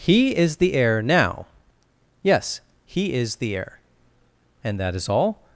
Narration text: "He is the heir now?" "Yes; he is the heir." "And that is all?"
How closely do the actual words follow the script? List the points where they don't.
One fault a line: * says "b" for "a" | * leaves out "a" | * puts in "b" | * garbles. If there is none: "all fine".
all fine